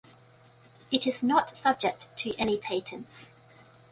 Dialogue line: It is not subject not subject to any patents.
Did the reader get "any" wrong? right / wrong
right